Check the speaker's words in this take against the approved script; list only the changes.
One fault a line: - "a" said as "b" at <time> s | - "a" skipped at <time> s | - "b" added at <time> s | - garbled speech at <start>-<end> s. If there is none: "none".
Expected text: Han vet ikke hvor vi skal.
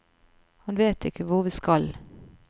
none